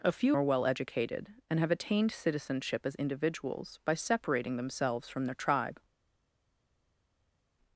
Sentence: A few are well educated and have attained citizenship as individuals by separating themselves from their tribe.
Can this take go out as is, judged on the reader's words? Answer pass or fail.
pass